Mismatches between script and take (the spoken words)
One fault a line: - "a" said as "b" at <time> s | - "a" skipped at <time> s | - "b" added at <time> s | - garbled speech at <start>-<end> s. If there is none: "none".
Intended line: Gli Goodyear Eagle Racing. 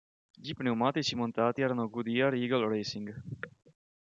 - "pneumatici montati erano" added at 0.6 s